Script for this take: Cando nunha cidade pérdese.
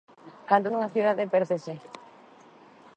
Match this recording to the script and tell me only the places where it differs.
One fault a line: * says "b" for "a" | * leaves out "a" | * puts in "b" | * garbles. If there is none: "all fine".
all fine